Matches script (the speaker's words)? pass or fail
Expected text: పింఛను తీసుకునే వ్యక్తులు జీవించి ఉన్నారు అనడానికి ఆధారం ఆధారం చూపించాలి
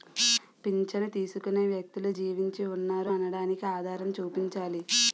fail